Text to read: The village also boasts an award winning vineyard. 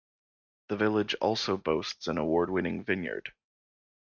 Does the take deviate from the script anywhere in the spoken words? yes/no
no